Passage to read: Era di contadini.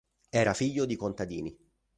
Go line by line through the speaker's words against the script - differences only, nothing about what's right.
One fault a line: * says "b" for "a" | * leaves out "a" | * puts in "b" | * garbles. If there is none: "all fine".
* puts in "figlio"